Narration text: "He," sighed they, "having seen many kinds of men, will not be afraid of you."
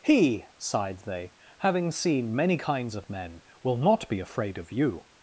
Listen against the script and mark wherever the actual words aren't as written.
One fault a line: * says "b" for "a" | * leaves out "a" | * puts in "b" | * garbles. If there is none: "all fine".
all fine